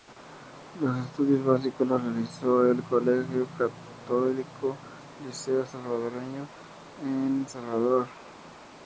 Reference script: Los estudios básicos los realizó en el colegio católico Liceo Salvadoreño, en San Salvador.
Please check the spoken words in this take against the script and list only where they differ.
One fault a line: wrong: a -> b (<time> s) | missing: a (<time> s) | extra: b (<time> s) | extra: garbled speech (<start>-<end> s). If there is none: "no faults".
missing: San (7.5 s)